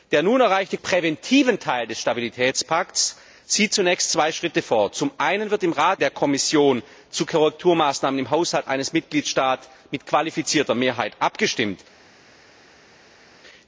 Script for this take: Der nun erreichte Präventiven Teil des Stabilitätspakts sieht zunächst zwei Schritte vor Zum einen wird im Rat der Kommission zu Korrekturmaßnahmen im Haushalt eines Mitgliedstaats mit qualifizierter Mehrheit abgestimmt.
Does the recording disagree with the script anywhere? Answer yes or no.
no